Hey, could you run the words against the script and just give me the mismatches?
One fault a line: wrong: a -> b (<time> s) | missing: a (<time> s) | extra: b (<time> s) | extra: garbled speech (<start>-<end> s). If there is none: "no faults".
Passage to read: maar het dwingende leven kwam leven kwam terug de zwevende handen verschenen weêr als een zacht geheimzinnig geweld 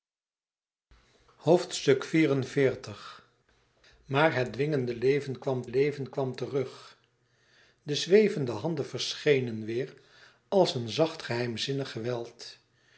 no faults